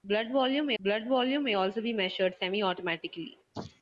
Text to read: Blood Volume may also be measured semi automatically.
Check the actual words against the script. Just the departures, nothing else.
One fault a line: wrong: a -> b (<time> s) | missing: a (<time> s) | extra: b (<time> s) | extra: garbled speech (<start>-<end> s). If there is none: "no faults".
extra: blood Volume may (0.8 s)